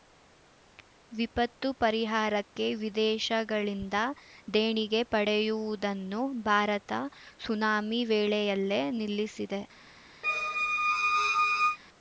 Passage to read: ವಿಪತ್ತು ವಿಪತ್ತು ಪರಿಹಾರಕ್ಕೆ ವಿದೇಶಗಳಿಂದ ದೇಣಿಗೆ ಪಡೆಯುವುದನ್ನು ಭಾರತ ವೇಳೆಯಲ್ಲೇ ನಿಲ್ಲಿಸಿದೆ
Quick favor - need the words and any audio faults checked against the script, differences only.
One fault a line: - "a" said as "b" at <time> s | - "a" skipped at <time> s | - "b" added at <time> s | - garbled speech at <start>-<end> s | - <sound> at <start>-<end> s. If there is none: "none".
- "ವಿಪತ್ತು" skipped at 1.7 s
- "ಸುನಾಮಿ" added at 7.4 s
- squeak at 10.2-11.8 s